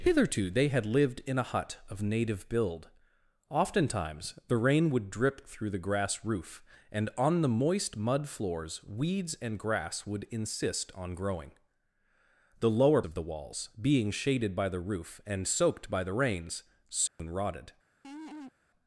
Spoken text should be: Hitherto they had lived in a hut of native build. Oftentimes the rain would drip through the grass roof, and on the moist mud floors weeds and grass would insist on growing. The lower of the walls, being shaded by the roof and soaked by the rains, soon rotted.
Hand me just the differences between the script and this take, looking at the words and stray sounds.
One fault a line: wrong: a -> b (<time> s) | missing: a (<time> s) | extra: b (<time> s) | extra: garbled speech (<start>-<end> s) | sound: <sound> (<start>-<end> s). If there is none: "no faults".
sound: dropout (17.1-17.2 s)
sound: laugh (18.0-18.5 s)